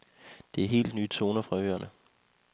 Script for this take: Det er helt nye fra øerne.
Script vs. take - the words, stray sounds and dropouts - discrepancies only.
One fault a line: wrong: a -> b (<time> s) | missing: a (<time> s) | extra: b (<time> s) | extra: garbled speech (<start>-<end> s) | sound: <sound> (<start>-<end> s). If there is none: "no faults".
extra: toner (1.1 s)